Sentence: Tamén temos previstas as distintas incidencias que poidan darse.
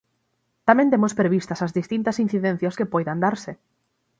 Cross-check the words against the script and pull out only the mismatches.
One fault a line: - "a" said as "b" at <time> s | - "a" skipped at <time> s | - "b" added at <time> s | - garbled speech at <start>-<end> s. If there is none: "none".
none